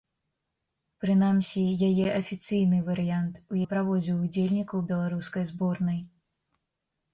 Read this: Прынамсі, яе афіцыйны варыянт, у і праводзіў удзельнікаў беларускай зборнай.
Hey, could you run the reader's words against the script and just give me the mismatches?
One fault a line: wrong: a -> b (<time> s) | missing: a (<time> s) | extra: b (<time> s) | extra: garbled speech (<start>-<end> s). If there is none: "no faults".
no faults